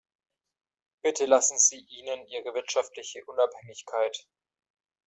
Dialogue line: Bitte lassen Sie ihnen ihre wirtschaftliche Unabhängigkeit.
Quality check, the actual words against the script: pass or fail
pass